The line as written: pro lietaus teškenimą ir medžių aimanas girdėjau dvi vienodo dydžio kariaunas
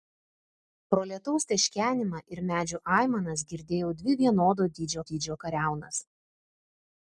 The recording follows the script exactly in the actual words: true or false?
false